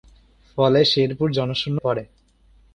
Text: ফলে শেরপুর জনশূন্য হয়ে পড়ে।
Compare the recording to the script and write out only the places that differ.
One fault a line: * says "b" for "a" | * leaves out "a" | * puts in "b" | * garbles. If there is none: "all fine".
* leaves out "হয়ে"